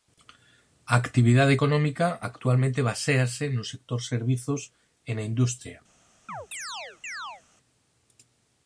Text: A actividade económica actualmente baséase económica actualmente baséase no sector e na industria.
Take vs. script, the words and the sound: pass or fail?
fail